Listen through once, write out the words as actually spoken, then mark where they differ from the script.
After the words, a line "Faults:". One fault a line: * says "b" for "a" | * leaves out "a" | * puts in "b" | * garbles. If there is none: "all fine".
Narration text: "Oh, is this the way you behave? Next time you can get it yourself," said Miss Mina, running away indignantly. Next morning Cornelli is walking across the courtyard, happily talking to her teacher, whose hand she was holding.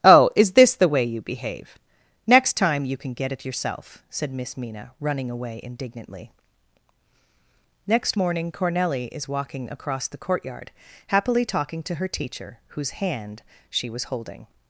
"Oh, is this the way you behave? Next time you can get it yourself," said Miss Mina, running away indignantly. Next morning Cornelli is walking across the courtyard, happily talking to her teacher, whose hand she was holding.
Faults:
all fine